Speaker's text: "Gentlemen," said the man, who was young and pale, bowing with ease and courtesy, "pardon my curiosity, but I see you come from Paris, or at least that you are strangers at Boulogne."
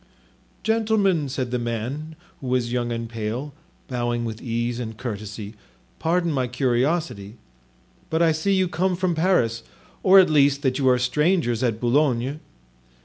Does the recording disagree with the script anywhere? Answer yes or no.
no